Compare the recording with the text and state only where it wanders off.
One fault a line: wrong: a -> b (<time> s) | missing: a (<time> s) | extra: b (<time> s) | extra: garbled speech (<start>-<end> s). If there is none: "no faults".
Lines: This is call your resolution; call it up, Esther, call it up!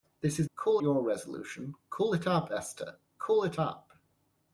no faults